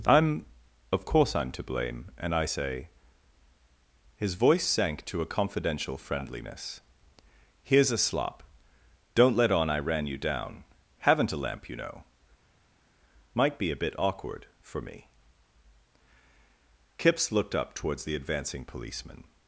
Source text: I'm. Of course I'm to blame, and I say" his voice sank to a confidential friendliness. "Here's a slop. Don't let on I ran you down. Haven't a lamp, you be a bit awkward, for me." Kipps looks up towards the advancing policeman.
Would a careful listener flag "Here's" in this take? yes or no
no